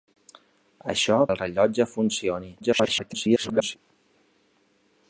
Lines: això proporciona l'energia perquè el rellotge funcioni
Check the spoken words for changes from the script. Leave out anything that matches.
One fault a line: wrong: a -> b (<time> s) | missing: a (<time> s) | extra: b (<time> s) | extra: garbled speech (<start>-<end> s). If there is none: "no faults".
missing: proporciona l'energia perquè (1.2 s)
extra: garbled speech (2.6-3.8 s)